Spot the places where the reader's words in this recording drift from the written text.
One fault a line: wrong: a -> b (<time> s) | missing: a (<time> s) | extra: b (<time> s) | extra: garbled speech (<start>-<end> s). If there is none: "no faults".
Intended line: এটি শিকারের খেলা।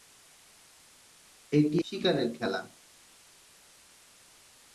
no faults